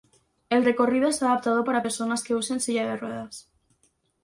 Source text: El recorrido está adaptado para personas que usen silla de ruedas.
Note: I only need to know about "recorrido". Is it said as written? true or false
true